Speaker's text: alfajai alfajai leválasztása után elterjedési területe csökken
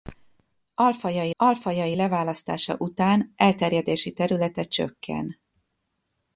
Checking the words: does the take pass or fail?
pass